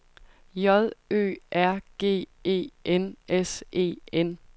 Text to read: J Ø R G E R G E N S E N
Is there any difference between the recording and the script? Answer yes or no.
yes